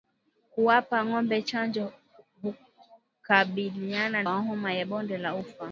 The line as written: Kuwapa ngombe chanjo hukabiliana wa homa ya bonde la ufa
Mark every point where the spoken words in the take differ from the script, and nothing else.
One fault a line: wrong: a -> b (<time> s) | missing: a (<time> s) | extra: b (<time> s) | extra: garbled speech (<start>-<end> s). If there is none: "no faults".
no faults